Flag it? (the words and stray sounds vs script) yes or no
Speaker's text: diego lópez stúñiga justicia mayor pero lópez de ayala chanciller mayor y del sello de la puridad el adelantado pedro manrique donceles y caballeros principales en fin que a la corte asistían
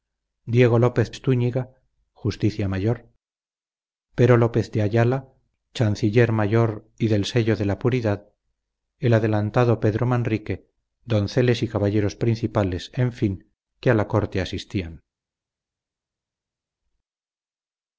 no